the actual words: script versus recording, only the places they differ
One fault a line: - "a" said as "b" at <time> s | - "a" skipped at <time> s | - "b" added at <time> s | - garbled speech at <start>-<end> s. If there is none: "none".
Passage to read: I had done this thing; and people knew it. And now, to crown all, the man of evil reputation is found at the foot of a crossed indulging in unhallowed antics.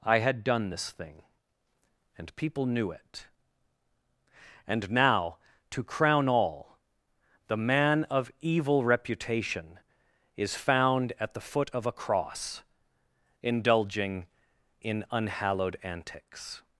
- "crossed" said as "cross" at 11.9 s